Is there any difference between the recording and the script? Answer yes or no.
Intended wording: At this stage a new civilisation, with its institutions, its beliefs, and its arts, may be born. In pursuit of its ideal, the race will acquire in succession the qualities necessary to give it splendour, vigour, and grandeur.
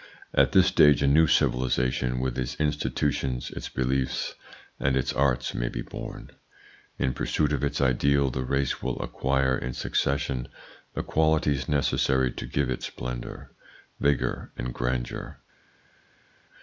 no